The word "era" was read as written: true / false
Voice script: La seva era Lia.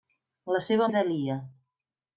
true